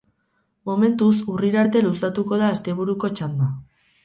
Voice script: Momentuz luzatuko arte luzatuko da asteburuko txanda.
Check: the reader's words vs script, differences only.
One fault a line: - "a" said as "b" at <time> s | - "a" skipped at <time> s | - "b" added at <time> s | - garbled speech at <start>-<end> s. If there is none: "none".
- "luzatuko" said as "urrira" at 1.3 s